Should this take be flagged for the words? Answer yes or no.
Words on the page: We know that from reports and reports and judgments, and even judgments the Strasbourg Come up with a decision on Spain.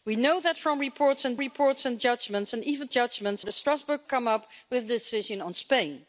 no